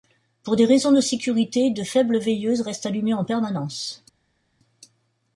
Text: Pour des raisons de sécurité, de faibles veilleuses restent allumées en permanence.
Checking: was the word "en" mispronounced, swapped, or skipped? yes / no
no